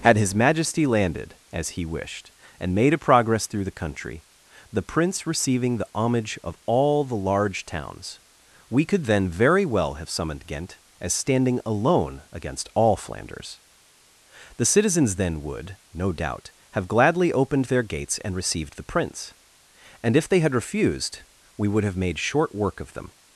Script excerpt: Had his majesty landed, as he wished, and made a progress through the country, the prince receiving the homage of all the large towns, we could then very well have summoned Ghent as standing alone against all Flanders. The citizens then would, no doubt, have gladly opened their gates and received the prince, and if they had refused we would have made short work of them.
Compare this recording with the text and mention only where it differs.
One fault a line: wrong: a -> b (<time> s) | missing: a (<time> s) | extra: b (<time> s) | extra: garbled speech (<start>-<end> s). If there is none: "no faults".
no faults